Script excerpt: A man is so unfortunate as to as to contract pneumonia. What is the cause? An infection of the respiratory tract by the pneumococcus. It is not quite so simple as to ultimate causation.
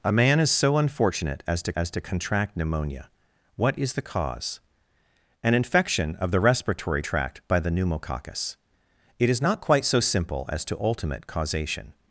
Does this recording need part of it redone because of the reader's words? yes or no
no